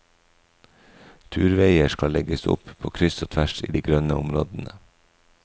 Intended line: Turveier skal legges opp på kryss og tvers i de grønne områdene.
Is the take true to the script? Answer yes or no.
yes